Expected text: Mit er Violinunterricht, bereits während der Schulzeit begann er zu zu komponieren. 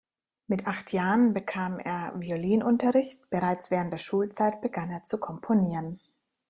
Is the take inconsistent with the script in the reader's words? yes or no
yes